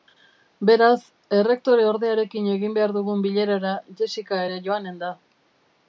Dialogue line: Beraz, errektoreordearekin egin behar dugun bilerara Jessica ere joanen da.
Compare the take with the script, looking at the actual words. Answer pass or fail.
pass